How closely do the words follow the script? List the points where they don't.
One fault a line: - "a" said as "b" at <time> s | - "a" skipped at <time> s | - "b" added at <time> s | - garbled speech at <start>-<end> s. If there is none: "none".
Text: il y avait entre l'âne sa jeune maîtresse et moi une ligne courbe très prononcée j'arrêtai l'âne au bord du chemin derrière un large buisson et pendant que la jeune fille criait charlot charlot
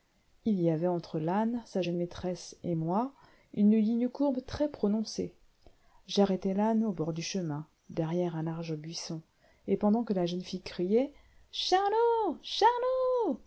none